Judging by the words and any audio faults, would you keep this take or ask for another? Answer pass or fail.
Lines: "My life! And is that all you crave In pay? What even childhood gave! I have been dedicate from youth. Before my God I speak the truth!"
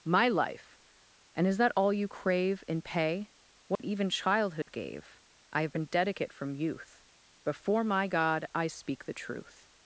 fail